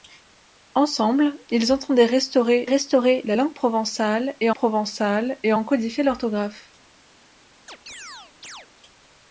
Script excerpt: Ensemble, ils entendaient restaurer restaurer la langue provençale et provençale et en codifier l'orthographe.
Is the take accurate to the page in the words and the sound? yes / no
no